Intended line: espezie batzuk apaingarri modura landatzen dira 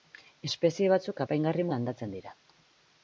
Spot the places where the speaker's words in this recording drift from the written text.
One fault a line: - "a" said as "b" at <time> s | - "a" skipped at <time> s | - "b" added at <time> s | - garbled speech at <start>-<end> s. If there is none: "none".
- "modura" skipped at 1.6 s